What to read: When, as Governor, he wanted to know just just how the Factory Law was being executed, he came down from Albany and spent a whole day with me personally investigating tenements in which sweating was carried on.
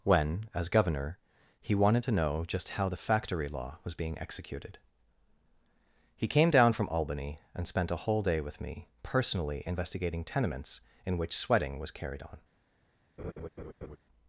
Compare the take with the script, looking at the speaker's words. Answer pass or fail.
fail